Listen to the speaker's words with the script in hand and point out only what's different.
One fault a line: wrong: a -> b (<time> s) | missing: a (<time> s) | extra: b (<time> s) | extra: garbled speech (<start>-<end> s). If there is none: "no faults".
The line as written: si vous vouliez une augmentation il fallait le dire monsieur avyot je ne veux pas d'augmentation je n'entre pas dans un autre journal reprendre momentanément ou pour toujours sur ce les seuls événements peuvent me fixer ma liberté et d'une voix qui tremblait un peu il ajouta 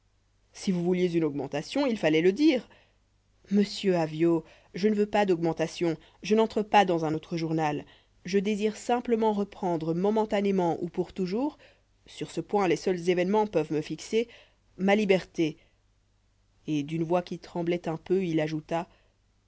extra: je désire simplement (8.2 s)
extra: point (12.4 s)